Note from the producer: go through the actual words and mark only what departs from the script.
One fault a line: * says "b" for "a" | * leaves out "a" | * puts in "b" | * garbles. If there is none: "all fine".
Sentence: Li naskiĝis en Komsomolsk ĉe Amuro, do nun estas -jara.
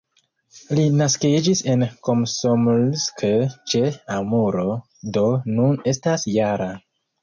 all fine